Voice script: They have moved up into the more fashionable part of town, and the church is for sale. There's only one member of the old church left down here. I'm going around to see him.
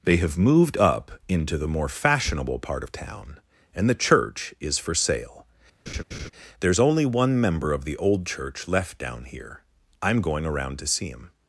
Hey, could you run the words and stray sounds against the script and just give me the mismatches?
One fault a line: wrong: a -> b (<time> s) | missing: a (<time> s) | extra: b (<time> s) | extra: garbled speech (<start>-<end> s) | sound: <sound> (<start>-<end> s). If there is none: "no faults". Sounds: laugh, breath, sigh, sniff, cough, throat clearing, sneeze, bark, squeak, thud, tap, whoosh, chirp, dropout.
sound: laugh (5.9-6.3 s)